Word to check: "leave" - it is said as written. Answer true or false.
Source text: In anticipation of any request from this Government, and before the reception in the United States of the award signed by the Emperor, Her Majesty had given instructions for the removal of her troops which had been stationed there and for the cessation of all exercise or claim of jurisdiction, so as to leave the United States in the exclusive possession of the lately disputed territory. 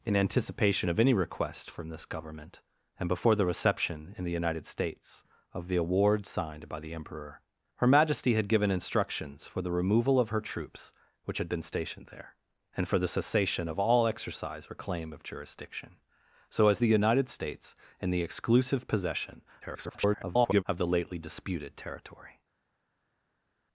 false